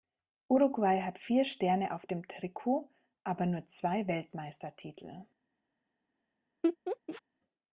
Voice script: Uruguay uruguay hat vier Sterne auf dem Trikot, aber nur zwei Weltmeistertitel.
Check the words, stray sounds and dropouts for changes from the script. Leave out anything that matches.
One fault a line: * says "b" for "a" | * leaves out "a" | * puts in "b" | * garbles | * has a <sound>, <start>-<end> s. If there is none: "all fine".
* leaves out "uruguay"
* has a laugh, 6.6-7.2 s